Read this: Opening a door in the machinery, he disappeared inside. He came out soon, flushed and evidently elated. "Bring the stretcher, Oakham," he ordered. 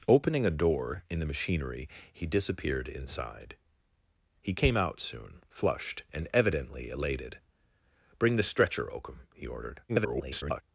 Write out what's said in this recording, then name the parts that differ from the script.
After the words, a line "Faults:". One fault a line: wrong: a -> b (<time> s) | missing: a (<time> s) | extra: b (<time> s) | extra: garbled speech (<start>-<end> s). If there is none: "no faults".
Opening a door in the machinery, he disappeared inside. He came out soon, flushed and evidently elated. "Bring the stretcher, Oakham," he ordered. [garbled]
Faults:
extra: garbled speech (9.9-10.6 s)